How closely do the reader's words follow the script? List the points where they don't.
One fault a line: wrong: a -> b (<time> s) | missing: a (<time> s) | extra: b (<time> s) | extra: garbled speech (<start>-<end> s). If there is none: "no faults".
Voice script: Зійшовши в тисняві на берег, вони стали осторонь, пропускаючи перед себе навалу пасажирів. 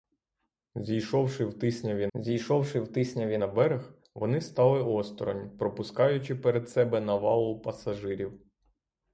extra: зійшовши в тисняві (2.1 s)